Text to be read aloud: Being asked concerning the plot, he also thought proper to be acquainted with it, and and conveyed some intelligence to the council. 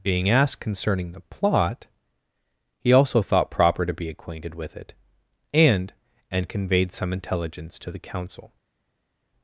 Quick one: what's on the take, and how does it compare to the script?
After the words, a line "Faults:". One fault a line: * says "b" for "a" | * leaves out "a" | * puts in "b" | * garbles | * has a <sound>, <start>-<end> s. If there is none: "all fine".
Being asked concerning the plot, he also thought proper to be acquainted with it, and and conveyed some intelligence to the council.
Faults:
all fine